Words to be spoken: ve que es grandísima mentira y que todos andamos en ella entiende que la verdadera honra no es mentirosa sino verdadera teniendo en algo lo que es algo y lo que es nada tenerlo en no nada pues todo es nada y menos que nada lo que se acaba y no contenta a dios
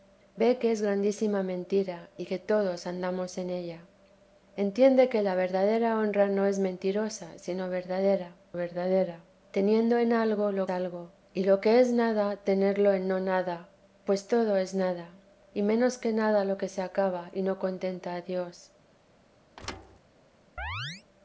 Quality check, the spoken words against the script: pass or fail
fail